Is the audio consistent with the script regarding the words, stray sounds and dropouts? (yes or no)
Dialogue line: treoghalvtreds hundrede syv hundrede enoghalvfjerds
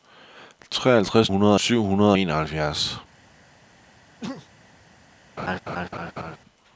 no